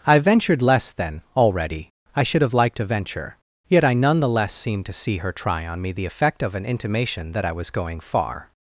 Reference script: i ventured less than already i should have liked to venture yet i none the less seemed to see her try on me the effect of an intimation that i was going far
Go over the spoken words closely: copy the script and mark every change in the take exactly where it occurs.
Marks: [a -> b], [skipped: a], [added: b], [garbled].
i ventured less than already i should have liked to venture yet i none the less seemed to see her try on me the effect of an intimation that i was going far